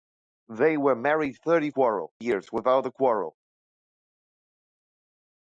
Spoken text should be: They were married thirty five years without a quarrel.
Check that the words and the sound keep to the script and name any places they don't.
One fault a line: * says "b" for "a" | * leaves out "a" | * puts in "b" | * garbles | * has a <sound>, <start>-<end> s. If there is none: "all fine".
* says "quarrel" for "five"